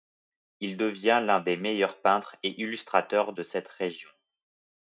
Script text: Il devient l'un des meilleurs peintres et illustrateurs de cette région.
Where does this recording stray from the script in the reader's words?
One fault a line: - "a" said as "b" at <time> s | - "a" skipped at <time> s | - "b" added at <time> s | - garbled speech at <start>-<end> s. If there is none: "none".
none